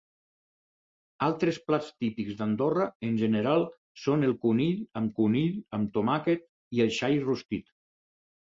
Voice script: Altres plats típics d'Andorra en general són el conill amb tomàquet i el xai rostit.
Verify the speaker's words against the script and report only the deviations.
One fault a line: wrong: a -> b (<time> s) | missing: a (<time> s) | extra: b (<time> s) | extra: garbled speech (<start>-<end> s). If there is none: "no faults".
extra: conill amb (5.2 s)